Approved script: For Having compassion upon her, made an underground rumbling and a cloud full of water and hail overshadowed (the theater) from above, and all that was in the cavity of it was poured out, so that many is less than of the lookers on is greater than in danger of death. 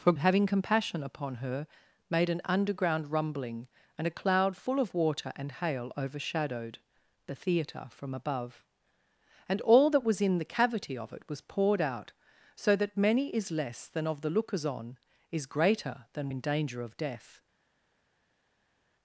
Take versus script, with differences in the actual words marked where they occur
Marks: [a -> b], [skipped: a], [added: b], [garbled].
For Having compassion upon her, made an underground rumbling and a cloud full of water and hail overshadowed (the theater) from above, and all that was in the cavity of it was poured out, so that many is less than of the lookers on is greater than in danger of death.